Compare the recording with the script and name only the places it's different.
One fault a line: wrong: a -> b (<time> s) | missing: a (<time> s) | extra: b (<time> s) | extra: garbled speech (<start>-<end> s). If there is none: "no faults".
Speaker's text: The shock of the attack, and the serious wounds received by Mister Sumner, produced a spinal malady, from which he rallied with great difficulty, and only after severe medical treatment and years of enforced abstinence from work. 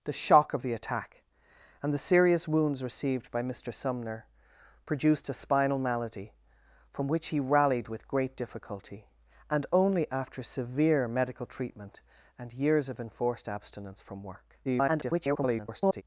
extra: garbled speech (14.6-16.0 s)